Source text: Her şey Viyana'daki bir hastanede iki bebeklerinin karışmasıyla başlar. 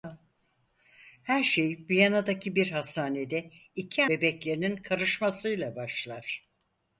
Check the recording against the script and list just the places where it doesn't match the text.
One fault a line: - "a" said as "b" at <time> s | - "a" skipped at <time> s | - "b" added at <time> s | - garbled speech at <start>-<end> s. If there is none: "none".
none